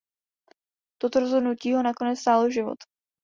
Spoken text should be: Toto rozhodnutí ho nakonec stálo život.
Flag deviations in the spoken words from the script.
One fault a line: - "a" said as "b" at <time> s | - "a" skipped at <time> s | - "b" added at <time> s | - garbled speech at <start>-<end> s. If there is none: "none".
none